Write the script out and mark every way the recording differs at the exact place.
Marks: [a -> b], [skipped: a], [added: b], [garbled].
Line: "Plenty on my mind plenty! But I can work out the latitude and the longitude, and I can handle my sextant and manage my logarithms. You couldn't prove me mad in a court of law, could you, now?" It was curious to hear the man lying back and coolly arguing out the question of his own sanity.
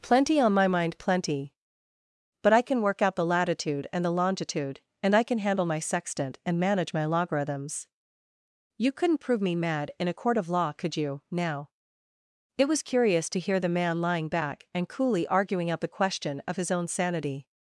"Plenty on my mind plenty! But I can work out the latitude and the longitude, and I can handle my sextant and manage my logarithms. You couldn't prove me mad in a court of law, could you, now?" It was curious to hear the man lying back and coolly arguing out the question of his own sanity.